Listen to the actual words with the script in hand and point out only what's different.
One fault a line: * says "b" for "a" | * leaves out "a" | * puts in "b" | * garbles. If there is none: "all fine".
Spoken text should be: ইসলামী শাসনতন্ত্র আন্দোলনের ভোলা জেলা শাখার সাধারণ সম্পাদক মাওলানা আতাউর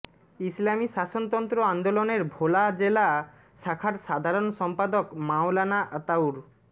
all fine